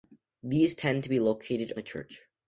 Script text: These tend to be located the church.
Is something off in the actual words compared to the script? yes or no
no